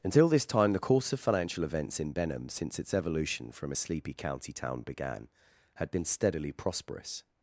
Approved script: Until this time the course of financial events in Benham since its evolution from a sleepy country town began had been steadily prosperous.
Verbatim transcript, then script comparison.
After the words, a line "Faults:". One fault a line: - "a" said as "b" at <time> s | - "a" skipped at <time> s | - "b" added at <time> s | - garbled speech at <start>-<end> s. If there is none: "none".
Until this time the course of financial events in Benham since its evolution from a sleepy county town began had been steadily prosperous.
Faults:
- "country" said as "county" at 4.1 s